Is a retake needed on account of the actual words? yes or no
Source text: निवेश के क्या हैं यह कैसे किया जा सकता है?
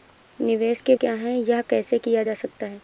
no